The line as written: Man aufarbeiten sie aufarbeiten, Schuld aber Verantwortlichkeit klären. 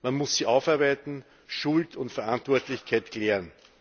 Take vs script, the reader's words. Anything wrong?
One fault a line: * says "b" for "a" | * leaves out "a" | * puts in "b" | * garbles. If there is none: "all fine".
* says "muss" for "aufarbeiten"
* says "und" for "aber"